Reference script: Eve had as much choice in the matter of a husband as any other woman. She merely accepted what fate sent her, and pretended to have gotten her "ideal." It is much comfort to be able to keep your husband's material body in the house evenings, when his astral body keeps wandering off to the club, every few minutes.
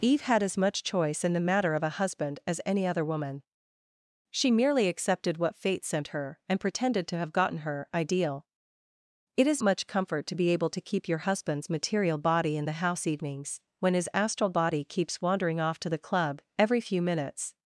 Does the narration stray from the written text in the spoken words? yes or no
no